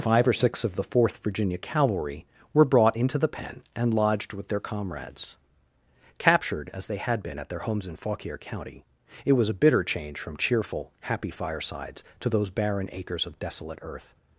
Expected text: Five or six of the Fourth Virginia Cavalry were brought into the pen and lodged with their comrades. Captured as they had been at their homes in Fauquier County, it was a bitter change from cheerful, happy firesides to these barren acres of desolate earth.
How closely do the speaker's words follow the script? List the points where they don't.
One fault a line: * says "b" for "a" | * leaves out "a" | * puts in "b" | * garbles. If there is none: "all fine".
* says "those" for "these"